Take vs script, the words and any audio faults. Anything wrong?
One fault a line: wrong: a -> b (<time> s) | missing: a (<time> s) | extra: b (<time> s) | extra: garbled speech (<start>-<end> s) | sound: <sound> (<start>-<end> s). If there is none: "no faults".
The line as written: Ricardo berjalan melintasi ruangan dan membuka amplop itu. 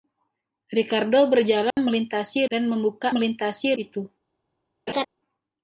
sound: dropout (1.7-1.8 s)
missing: ruangan (2.5 s)
wrong: amplop -> melintasi (3.1 s)
sound: laugh (4.9-5.0 s)